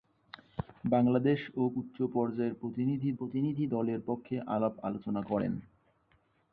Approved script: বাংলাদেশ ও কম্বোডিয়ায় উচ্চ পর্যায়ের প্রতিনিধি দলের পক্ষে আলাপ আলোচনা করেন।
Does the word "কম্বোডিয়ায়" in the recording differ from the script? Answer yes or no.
yes